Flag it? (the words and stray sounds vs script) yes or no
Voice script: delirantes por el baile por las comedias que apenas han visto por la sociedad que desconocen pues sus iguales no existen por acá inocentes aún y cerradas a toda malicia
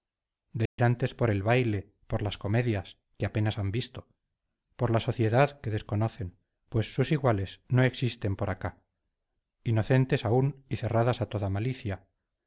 yes